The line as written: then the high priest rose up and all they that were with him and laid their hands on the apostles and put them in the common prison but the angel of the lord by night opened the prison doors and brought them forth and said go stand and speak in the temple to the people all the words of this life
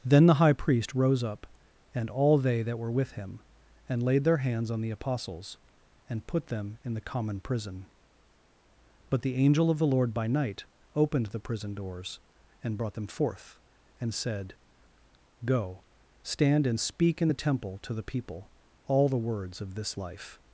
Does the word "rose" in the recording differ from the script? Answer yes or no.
no